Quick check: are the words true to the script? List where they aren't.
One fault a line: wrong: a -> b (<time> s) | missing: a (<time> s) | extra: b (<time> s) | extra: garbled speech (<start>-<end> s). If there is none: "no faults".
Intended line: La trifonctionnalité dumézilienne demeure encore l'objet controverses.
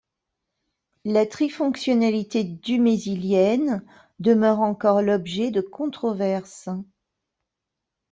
extra: de (5.5 s)